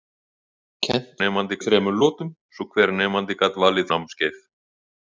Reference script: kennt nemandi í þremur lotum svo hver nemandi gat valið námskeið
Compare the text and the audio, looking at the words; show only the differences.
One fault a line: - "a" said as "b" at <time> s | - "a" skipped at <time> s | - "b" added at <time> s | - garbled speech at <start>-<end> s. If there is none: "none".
none